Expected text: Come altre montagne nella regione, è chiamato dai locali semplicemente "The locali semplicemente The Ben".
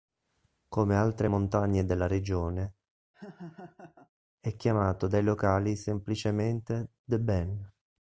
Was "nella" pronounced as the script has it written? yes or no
no